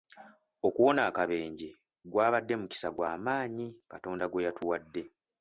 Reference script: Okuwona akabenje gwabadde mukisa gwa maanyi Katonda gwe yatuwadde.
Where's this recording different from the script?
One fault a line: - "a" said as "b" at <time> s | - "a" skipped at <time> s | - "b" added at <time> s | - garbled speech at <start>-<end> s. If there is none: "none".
none